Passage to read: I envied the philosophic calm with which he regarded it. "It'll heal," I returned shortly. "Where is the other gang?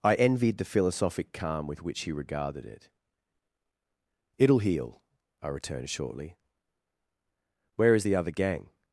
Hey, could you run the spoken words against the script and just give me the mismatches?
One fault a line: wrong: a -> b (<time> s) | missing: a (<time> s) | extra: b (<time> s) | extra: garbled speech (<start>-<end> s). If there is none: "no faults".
no faults